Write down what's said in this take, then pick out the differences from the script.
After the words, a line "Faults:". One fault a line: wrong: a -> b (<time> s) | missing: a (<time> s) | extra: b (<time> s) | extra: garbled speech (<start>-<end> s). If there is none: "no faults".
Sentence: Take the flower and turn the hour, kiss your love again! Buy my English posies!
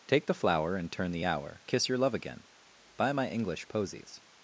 Take the flower and turn the hour, kiss your love again! Buy my English posies!
Faults:
no faults